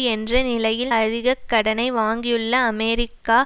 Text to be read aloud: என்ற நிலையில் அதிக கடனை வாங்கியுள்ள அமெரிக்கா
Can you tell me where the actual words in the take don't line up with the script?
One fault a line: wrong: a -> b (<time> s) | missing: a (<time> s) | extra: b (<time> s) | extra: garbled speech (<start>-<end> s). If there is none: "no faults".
no faults